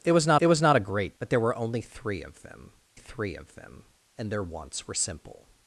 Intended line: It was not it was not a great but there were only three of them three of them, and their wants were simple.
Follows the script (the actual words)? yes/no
yes